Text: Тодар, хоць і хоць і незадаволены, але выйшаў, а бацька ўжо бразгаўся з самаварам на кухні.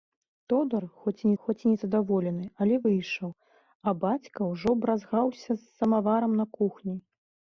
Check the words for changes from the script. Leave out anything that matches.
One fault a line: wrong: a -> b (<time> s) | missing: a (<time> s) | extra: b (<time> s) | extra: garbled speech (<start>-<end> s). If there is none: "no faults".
no faults